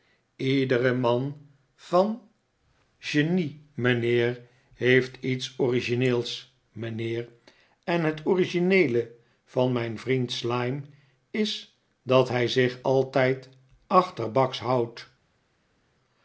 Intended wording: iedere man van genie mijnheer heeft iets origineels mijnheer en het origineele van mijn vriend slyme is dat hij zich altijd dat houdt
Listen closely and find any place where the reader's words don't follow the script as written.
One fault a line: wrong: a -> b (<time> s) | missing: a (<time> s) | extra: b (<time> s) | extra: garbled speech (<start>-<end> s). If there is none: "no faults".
wrong: dat -> achterbaks (13.9 s)